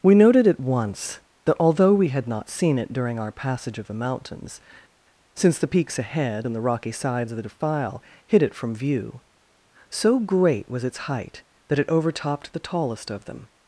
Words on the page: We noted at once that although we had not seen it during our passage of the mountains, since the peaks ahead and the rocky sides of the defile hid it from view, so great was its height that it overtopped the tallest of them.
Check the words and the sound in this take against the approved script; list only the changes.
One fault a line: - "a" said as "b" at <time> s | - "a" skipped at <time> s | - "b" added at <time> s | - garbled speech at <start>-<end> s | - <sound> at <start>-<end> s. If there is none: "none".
none